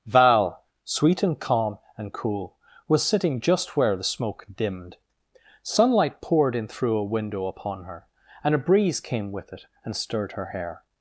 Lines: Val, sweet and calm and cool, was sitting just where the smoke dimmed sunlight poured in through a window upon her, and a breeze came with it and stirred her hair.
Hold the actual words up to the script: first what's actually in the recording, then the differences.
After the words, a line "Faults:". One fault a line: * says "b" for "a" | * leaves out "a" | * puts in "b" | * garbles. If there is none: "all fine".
Val, sweet and calm and cool, was sitting just where the smoke dimmed sunlight poured in through a window upon her, and a breeze came with it and stirred her hair.
Faults:
all fine